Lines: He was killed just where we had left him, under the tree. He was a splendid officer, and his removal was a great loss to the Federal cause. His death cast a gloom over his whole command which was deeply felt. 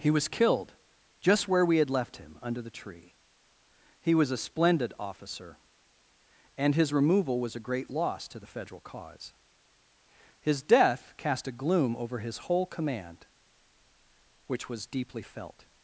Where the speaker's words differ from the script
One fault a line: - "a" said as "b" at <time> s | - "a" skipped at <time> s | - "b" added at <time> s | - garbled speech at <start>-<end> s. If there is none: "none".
none